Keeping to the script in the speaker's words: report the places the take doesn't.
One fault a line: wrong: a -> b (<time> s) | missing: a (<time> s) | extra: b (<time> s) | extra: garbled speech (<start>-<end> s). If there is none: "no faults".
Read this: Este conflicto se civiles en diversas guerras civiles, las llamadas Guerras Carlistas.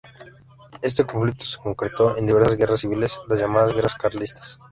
wrong: civiles -> concretó (1.6 s)